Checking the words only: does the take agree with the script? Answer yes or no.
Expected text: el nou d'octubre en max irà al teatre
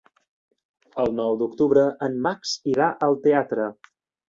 yes